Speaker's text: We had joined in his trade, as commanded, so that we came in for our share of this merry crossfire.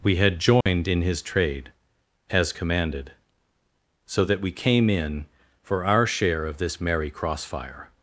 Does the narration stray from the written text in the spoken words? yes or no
no